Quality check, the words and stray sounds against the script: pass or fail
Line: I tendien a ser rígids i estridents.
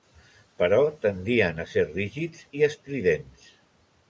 fail